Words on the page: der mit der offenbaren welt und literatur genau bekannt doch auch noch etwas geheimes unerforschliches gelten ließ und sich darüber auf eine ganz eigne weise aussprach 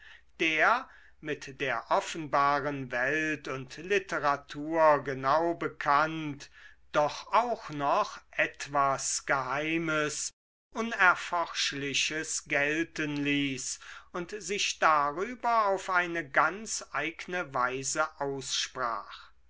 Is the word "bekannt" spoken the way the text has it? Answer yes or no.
yes